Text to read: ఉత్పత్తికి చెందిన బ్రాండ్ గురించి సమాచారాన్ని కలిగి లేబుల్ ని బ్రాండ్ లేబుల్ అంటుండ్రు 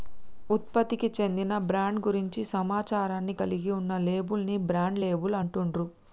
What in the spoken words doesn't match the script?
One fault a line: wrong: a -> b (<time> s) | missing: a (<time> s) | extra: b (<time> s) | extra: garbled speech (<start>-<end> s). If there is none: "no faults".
extra: ఉన్న (3.8 s)